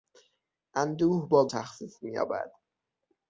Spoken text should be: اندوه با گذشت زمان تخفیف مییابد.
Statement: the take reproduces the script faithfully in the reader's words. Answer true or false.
false